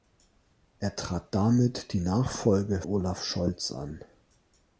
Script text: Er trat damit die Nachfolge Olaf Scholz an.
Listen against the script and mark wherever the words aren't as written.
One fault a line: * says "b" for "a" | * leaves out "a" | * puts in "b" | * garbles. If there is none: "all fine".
all fine